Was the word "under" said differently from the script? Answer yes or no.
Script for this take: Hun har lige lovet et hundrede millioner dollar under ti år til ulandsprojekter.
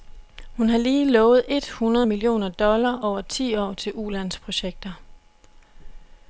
yes